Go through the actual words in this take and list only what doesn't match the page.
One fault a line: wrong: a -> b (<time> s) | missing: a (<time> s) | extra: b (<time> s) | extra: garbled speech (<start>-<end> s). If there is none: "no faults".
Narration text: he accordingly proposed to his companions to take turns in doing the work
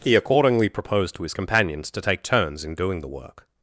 no faults